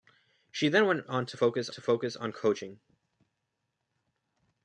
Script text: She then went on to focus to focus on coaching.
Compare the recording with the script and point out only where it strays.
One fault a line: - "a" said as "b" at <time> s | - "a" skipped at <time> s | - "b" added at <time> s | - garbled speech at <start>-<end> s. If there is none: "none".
none